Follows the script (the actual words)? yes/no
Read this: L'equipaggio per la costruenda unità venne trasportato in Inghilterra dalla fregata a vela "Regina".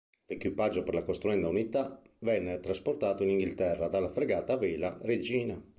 yes